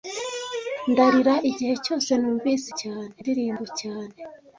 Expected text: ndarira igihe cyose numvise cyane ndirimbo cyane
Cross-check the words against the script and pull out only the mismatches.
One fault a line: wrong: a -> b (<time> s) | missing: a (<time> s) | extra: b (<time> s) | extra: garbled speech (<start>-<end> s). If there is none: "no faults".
no faults